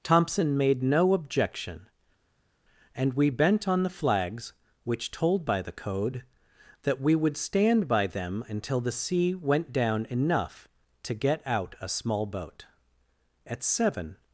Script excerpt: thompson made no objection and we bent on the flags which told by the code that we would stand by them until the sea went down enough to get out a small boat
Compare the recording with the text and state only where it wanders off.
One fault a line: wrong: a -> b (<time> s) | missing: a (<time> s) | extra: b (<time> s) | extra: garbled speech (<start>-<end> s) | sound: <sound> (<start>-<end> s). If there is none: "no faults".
extra: at seven (13.5 s)